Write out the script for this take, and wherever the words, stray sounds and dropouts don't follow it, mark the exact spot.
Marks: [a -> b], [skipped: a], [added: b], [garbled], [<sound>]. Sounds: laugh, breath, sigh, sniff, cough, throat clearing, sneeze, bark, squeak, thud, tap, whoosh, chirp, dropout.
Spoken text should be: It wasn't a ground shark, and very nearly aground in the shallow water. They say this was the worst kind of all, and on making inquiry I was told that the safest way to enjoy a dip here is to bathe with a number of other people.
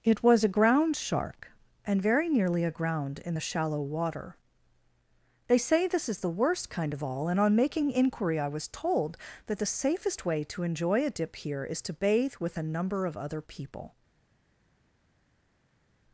It [wasn't -> was] a ground shark, and very nearly aground in the shallow water. They say this [was -> is] the worst kind of all, and on making inquiry I was told that the safest way to enjoy a dip here is to bathe with a number of other people.